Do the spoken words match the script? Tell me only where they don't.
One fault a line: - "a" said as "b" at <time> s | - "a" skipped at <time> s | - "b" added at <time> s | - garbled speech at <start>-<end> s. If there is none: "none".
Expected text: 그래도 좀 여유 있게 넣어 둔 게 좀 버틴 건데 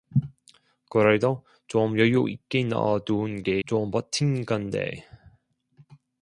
none